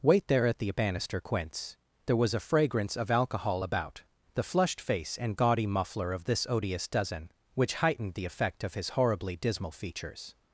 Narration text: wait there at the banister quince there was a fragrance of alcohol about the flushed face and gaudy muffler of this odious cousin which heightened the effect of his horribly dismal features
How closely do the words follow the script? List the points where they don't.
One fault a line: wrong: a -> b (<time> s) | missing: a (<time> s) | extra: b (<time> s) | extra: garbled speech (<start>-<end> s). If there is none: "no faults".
wrong: cousin -> dozen (6.9 s)